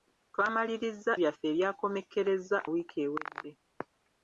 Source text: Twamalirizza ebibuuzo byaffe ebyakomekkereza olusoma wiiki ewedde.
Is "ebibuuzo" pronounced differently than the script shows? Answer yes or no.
yes